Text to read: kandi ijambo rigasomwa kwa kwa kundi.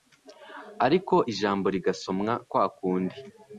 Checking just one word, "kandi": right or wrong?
wrong